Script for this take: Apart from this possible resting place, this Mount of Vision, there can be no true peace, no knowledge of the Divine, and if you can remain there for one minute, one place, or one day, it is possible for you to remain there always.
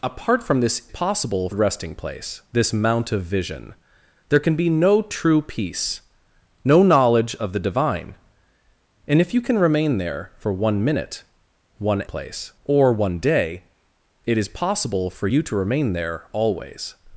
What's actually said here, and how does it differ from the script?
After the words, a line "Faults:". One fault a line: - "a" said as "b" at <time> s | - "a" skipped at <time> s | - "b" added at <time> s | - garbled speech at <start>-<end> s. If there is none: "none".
Apart from this possible resting place, this Mount of Vision, there can be no true peace, no knowledge of the Divine, and if you can remain there for one minute, one place, or one day, it is possible for you to remain there always.
Faults:
none